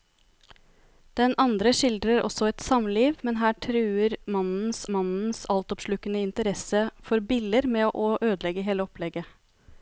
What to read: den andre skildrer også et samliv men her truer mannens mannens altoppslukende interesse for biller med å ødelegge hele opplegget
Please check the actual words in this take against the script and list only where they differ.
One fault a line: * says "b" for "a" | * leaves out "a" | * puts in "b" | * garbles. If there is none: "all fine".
all fine